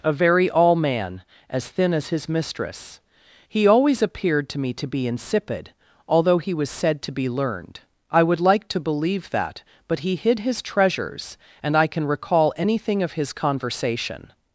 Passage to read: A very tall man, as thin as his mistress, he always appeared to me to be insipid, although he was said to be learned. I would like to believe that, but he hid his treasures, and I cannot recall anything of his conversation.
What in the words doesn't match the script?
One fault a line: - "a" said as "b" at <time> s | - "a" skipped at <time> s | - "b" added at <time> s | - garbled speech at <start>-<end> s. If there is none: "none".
- "tall" said as "all" at 0.5 s
- "cannot" said as "can" at 11.9 s